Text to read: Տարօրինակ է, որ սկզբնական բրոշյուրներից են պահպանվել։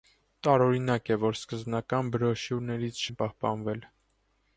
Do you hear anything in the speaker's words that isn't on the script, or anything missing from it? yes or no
no